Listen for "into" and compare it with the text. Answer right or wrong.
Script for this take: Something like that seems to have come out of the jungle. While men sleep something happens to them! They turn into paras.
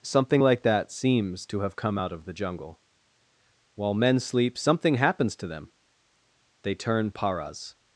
wrong